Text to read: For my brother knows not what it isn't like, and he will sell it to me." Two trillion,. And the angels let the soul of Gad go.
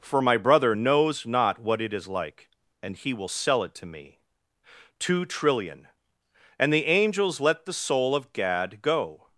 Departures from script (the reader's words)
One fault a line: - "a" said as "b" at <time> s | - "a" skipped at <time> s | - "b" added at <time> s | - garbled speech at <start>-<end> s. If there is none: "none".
- "isn't" said as "is" at 1.9 s